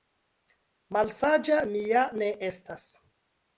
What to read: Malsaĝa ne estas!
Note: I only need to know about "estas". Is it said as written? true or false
true